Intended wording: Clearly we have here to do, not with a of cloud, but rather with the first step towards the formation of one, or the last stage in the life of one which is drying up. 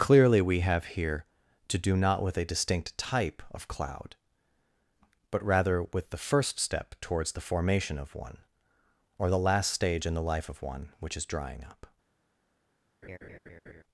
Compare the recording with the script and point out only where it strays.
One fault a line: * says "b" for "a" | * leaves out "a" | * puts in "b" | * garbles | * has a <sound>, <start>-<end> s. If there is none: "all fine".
* puts in "distinct type"
* has a laugh, 13.0-13.8 s